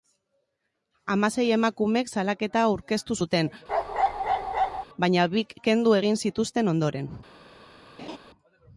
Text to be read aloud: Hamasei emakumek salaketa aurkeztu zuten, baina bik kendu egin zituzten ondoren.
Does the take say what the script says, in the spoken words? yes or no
yes